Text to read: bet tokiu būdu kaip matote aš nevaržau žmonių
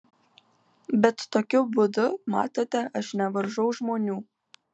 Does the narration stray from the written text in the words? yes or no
yes